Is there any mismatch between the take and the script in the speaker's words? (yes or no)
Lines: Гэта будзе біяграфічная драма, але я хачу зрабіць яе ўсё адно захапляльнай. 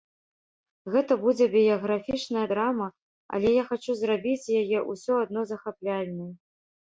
no